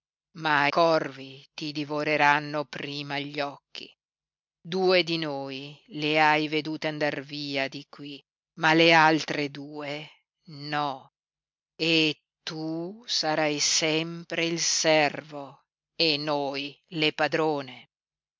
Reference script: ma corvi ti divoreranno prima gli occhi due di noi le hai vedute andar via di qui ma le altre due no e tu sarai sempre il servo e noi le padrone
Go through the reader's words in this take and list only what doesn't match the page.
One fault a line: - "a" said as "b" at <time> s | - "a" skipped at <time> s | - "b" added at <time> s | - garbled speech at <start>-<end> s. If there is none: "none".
none